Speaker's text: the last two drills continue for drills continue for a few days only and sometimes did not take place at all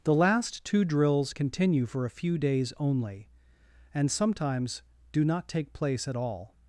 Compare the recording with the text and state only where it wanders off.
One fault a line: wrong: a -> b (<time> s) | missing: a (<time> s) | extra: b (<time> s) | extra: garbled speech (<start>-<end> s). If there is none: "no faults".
missing: drills continue for (2.1 s)
wrong: did -> do (5.1 s)